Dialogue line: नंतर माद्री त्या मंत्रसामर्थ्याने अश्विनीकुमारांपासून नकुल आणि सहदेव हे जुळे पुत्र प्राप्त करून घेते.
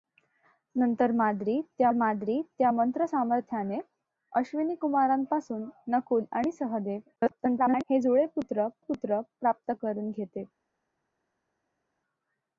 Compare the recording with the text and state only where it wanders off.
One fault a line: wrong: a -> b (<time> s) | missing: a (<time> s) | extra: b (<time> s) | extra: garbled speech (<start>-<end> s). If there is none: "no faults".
extra: माद्री त्या (1.9 s)
extra: garbled speech (7.2-7.8 s)
extra: पुत्र (8.8 s)